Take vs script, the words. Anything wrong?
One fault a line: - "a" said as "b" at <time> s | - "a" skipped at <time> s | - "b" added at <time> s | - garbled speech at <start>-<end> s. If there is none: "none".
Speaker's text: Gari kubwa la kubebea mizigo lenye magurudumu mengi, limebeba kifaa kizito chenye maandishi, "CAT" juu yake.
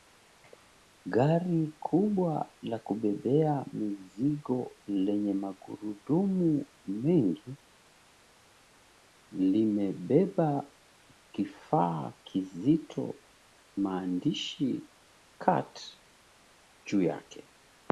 - "chenye" skipped at 13.2 s